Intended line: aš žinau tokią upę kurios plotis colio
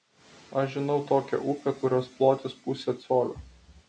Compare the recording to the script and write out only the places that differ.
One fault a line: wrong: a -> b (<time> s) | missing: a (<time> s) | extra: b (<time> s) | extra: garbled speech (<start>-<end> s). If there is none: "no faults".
extra: pusė (2.6 s)